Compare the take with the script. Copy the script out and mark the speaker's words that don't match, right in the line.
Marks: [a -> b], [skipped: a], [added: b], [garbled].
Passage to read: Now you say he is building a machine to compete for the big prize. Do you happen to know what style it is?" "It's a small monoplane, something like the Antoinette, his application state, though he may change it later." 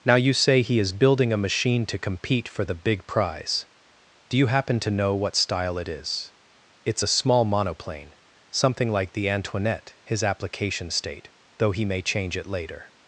Now you say he is building a machine to compete for the big prize. Do you happen to know what style it is?" "It's a small monoplane, something like the Antoinette, his application state, though he may change it later."